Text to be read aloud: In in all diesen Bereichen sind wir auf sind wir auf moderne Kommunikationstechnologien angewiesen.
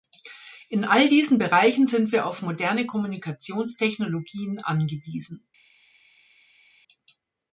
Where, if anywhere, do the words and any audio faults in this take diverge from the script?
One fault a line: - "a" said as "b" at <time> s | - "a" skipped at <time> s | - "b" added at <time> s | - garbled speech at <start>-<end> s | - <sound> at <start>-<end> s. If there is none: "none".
- "in" skipped at 0.8 s
- "sind wir auf" skipped at 2.4 s